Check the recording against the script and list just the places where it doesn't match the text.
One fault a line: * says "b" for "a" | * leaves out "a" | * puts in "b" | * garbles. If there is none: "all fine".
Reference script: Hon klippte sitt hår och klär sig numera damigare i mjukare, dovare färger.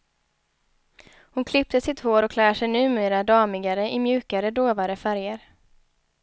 all fine